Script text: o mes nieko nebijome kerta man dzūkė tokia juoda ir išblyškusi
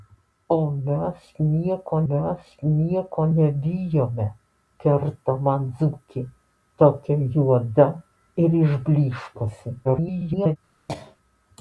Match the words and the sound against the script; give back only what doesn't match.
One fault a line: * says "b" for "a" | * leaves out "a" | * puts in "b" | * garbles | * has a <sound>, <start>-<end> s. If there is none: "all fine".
* puts in "mes nieko"
* garbles
* has a cough, 10.9-11.2 s